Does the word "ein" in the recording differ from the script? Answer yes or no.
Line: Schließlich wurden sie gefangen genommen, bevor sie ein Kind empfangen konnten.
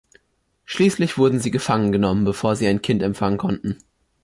no